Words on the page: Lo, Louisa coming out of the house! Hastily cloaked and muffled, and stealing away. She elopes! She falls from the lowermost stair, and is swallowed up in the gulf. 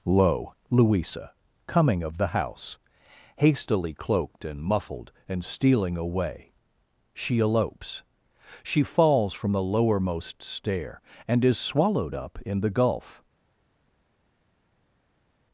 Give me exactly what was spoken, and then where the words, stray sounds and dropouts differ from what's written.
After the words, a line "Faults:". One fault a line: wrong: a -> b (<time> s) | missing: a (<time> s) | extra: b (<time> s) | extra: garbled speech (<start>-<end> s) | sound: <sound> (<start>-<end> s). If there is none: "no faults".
Lo, Louisa coming of the house! Hastily cloaked and muffled, and stealing away. She elopes! She falls from the lowermost stair, and is swallowed up in the gulf.
Faults:
missing: out (2.0 s)